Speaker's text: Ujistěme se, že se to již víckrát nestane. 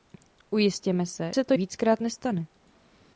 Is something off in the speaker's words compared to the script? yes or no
yes